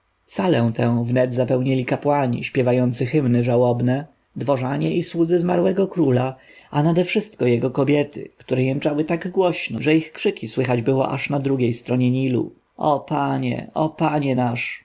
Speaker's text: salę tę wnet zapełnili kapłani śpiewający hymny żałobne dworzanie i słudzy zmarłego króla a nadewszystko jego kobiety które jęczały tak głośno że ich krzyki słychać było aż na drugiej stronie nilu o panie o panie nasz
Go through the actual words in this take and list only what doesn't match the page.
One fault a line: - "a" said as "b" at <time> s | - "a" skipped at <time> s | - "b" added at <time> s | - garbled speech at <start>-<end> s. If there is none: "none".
none